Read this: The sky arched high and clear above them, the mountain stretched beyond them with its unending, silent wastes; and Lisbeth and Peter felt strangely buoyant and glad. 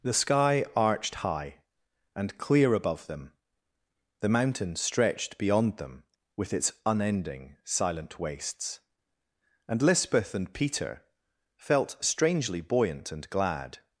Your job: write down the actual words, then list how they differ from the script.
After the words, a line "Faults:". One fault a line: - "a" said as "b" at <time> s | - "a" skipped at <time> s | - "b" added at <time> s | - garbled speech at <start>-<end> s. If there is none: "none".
The sky arched high and clear above them, the mountain stretched beyond them with its unending, silent wastes; and Lisbeth and Peter felt strangely buoyant and glad.
Faults:
none